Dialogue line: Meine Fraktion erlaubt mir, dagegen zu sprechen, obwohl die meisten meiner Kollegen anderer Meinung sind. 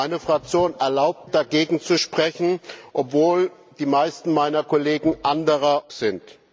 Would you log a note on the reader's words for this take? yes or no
yes